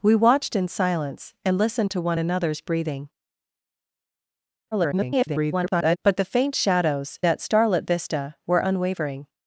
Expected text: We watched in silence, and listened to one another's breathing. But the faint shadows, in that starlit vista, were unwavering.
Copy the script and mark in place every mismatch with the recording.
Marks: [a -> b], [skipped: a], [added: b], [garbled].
We watched in silence, and listened to one another's breathing. [garbled] But the faint shadows, [skipped: in] that starlit vista, were unwavering.